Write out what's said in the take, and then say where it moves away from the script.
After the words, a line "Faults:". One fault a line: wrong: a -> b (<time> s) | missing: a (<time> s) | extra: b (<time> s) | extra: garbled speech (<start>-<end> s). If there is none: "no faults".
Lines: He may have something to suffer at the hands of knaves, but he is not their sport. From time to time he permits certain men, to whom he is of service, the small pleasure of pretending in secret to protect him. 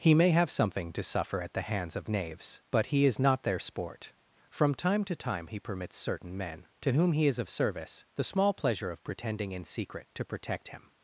He may have something to suffer at the hands of knaves, but he is not their sport. From time to time he permits certain men, to whom he is of service, the small pleasure of pretending in secret to protect him.
Faults:
no faults